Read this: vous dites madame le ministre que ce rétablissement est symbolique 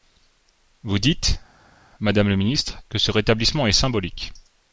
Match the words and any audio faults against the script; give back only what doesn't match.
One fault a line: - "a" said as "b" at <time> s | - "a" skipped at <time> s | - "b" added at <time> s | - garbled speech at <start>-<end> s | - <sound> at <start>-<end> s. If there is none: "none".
none